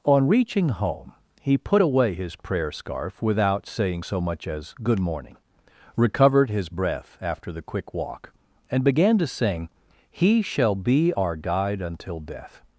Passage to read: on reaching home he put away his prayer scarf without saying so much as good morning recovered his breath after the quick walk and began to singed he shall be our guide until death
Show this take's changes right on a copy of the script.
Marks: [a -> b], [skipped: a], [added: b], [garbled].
on reaching home he put away his prayer scarf without saying so much as good morning recovered his breath after the quick walk and began to [singed -> sing] he shall be our guide until death